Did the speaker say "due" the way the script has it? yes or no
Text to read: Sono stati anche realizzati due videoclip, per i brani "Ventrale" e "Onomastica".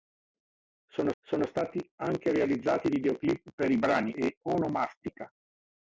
no